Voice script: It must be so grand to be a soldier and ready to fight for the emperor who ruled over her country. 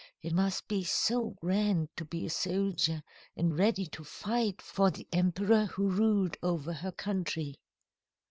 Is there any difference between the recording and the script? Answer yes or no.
no